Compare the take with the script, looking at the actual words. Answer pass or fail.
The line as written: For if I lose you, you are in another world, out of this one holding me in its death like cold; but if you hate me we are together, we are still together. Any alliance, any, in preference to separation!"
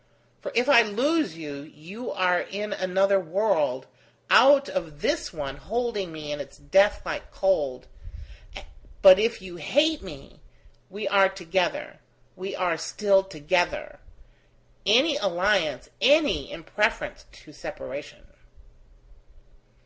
pass